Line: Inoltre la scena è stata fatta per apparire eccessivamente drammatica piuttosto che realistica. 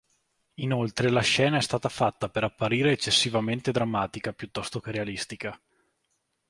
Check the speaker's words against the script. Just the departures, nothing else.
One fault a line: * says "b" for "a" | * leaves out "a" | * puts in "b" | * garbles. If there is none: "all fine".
all fine